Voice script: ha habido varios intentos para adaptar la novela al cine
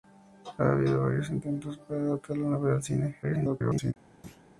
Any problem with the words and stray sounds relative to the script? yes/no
yes